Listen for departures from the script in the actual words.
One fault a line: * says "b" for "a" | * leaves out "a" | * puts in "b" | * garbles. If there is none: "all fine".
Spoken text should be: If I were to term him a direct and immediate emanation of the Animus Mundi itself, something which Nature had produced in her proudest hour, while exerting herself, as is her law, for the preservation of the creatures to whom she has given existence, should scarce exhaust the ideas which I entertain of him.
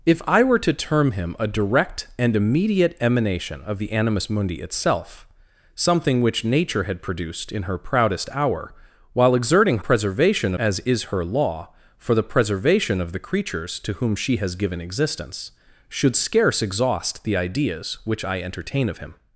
* says "preservation" for "herself"